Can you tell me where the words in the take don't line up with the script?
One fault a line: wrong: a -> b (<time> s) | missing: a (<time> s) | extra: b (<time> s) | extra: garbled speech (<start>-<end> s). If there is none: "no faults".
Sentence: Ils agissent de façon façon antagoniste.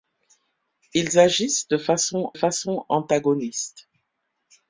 no faults